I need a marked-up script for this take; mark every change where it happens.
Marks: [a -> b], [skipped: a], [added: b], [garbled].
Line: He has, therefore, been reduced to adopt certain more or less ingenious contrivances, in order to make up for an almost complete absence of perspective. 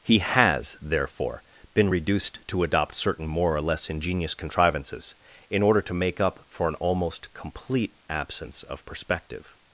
He has, therefore, been reduced to adopt certain more or less ingenious contrivances, in order to make up for an almost complete absence of perspective.